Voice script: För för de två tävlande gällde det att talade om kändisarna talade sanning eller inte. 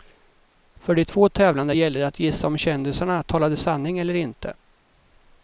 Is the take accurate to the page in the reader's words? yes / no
no